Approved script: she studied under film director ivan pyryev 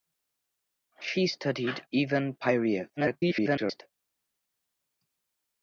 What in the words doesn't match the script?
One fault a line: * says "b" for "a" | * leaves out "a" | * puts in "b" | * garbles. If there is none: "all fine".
* leaves out "under film director"
* garbles